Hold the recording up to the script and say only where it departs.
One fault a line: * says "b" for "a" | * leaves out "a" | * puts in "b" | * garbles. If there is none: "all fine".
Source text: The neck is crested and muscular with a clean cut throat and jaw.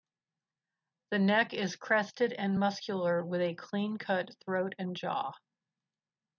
all fine